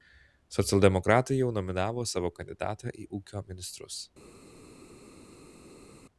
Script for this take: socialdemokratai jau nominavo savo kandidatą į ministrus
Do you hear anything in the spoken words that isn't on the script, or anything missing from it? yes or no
yes